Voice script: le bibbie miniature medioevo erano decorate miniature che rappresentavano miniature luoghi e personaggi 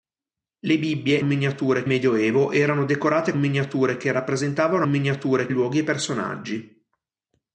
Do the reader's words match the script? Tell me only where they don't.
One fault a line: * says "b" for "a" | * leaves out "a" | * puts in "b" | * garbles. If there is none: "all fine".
all fine